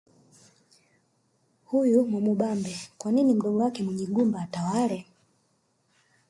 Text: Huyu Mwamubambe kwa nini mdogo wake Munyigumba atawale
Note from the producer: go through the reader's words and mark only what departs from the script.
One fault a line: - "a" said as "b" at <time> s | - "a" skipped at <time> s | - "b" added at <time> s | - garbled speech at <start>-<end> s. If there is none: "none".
none